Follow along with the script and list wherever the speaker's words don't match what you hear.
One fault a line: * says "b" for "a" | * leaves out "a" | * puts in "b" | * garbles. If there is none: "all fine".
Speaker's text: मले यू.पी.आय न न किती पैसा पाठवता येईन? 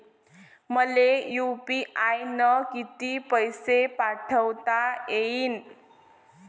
* leaves out "न"